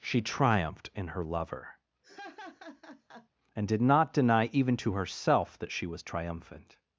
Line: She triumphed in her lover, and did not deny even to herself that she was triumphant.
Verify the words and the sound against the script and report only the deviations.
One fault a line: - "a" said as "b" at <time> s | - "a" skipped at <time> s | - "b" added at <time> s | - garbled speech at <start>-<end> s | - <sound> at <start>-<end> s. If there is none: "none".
- laugh at 2.0-3.3 s